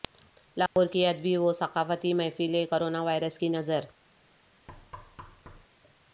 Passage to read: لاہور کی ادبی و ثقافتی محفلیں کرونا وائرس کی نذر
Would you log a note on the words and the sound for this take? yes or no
yes